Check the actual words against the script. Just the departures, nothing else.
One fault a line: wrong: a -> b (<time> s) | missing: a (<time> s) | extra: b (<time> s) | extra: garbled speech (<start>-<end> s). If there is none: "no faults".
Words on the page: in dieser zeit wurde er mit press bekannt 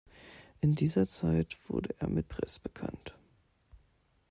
no faults